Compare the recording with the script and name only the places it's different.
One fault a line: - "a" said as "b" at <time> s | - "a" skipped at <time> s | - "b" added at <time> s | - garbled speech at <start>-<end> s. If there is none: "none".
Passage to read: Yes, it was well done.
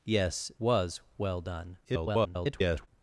- "it" skipped at 0.5 s
- garbled speech at 1.8-2.9 s